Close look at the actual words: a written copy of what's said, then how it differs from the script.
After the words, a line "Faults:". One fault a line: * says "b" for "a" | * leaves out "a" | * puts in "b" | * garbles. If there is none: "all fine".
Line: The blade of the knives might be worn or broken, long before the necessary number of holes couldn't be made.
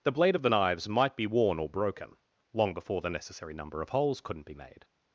The blade of the knives might be worn or broken, long before the necessary number of holes couldn't be made.
Faults:
all fine